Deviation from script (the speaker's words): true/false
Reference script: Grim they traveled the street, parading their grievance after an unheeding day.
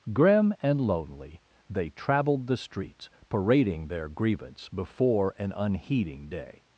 true